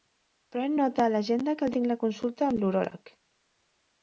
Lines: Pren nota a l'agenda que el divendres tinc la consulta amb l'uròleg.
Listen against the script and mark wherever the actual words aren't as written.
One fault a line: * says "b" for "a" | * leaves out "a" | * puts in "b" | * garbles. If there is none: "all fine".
* leaves out "divendres"